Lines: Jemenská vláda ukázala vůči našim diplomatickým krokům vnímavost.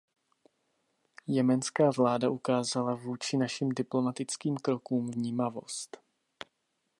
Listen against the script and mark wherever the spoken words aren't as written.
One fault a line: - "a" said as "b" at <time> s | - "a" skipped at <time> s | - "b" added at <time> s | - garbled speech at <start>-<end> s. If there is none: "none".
none